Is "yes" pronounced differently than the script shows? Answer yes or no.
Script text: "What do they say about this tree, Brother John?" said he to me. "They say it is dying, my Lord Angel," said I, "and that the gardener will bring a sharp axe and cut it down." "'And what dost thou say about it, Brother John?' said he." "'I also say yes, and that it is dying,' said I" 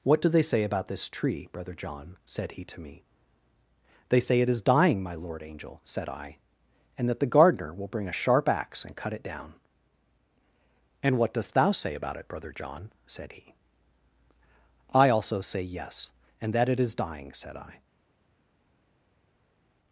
no